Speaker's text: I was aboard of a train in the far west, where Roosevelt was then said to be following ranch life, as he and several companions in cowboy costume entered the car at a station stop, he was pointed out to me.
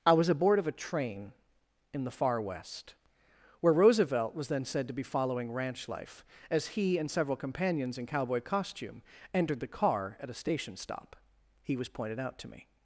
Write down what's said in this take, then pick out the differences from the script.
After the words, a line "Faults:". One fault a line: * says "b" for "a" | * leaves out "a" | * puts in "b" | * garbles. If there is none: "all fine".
I was aboard of a train in the far west, where Roosevelt was then said to be following ranch life, as he and several companions in cowboy costume entered the car at a station stop, he was pointed out to me.
Faults:
all fine